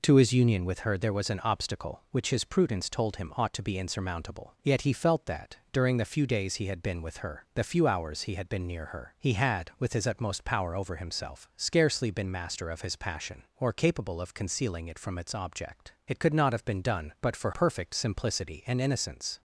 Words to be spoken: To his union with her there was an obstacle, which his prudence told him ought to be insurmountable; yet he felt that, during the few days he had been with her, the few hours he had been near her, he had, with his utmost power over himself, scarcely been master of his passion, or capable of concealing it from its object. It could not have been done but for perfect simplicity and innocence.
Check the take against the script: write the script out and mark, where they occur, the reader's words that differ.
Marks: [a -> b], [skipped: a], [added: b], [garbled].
To his union with her there was an obstacle, which his prudence told him ought to be insurmountable; yet he felt that, during the few days he had been with her, the few hours he had been near her, he had, with his utmost power over himself, scarcely been master of his passion, or capable of concealing it from its object. It could not have been done but for perfect simplicity and innocence.